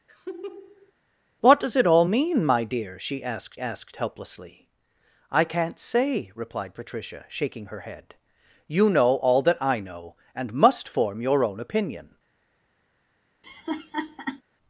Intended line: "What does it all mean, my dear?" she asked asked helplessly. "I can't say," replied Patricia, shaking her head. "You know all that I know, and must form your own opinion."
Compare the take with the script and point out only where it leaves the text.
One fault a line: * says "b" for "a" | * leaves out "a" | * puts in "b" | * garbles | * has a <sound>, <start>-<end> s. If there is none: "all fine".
* has a laugh, 0.1-0.9 s
* has a laugh, 13.4-14.4 s